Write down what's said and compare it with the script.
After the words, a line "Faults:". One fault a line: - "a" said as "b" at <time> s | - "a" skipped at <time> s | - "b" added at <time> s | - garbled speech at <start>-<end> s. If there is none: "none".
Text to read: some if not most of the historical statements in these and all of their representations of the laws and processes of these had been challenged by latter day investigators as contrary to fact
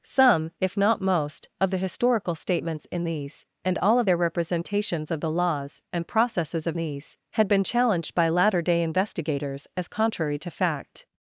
some if not most of the historical statements in these and all of their representations of the laws and processes of these had been challenged by latter day investigators as contrary to fact
Faults:
none